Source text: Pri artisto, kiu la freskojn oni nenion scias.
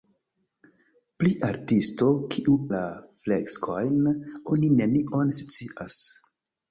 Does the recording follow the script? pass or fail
pass